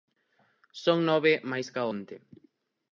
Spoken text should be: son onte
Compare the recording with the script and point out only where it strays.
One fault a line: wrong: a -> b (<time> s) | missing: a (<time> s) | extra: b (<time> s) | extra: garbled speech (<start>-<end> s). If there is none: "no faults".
extra: nove máis ca (1.1 s)